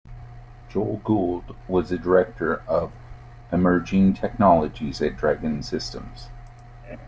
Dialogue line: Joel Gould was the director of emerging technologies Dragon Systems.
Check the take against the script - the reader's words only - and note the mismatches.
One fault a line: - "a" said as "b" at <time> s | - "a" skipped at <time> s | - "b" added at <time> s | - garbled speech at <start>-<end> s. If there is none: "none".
- "at" added at 5.0 s